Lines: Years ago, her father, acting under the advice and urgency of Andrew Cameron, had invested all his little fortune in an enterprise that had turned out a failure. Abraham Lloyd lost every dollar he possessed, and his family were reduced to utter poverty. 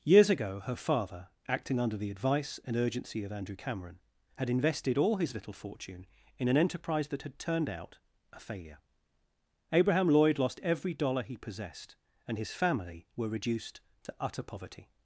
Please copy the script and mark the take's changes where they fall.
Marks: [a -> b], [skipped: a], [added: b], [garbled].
Years ago, her father, acting under the advice and urgency of Andrew Cameron, had invested all his little fortune in an enterprise that had turned out a failure. Abraham Lloyd lost every dollar he possessed, and his family were reduced to utter poverty.